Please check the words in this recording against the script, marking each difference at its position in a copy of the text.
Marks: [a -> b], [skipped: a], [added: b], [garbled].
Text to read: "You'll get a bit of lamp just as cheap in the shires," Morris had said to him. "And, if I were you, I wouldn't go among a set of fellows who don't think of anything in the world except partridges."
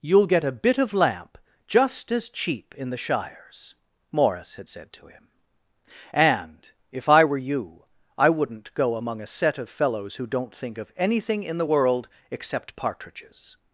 "You'll get a bit of lamp just as cheap in the shires," Morris had said to him. "And, if I were you, I wouldn't go among a set of fellows who don't think of anything in the world except partridges."